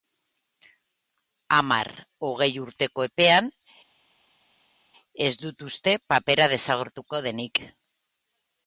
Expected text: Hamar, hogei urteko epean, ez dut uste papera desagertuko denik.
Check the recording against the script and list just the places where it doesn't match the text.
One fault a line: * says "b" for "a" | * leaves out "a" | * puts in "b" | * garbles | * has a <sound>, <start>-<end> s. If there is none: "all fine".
all fine